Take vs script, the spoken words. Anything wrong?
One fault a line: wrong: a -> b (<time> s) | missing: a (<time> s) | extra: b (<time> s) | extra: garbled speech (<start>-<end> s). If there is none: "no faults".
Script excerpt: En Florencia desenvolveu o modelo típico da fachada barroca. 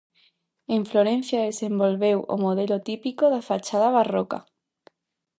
no faults